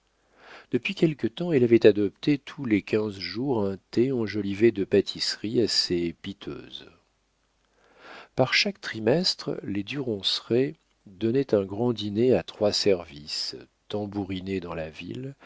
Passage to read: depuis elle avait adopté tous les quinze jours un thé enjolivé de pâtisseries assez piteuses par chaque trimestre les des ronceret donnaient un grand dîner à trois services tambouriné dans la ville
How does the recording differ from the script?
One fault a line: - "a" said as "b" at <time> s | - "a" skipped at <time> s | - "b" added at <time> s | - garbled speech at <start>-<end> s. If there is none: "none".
- "quelque temps" added at 0.9 s
- "des" said as "du" at 9.8 s